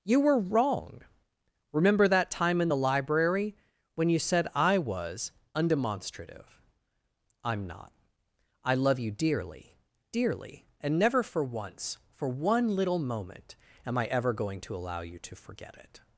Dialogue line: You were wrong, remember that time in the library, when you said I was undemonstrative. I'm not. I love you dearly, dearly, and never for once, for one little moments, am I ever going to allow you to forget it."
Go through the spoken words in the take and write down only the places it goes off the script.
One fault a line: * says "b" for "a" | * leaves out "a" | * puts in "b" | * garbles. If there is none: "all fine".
* says "moment" for "moments"